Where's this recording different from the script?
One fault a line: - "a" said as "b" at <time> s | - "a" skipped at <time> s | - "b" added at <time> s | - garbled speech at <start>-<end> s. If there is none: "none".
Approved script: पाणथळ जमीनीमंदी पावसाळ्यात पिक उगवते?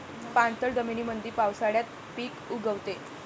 none